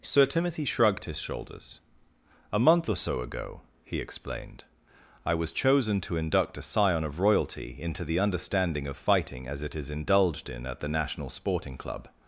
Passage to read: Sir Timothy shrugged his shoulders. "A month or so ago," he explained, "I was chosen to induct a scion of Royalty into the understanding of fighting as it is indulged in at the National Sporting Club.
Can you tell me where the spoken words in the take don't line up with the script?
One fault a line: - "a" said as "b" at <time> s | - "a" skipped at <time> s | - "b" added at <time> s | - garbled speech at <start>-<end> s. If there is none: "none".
none